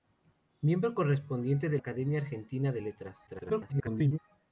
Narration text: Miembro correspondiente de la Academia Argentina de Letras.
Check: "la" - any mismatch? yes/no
yes